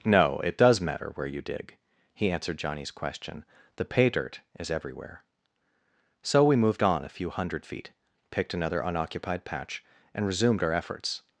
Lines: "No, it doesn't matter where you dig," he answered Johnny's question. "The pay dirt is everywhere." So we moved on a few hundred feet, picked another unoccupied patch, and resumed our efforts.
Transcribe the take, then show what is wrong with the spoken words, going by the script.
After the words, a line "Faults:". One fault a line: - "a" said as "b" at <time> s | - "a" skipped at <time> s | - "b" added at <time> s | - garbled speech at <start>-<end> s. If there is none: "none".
"No, it does matter where you dig," he answered Johnny's question. "The pay dirt is everywhere." So we moved on a few hundred feet, picked another unoccupied patch, and resumed our efforts.
Faults:
- "doesn't" said as "does" at 0.6 s